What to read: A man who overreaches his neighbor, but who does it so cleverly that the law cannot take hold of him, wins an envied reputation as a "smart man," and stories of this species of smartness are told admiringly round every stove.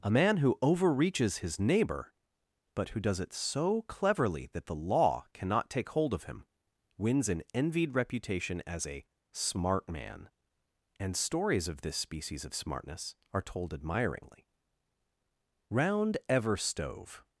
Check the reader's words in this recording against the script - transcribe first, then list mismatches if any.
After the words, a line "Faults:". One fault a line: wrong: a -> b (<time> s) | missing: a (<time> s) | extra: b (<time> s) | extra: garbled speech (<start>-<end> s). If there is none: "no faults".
A man who overreaches his neighbor, but who does it so cleverly that the law cannot take hold of him, wins an envied reputation as a "smart man," and stories of this species of smartness are told admiringly round ever stove.
Faults:
wrong: every -> ever (16.3 s)